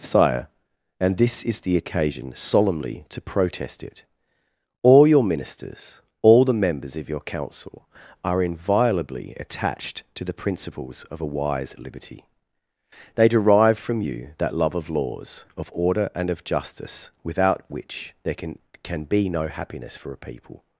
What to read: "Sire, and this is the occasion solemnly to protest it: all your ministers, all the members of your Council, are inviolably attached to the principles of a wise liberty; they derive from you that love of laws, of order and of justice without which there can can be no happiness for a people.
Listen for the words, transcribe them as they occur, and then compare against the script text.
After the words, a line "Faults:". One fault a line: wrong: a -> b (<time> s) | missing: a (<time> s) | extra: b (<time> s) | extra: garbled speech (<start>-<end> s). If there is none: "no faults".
"Sire, and this is the occasion solemnly to protest it: all your ministers, all the members of your Council, are inviolably attached to the principles of a wise liberty; they derive from you that love of laws, of order and of justice without which there can can be no happiness for a people.
Faults:
no faults